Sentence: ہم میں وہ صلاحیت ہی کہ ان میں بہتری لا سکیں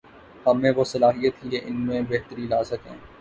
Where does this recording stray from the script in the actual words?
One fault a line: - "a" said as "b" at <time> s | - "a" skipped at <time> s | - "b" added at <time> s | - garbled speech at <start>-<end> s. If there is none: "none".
none